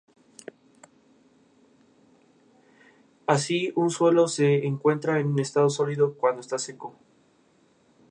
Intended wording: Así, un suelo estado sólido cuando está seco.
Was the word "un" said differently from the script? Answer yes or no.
no